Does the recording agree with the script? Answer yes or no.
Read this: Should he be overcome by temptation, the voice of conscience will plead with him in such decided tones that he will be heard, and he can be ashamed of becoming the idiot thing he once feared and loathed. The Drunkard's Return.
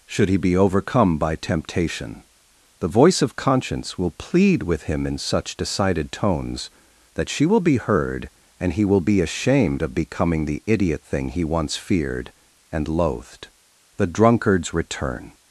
no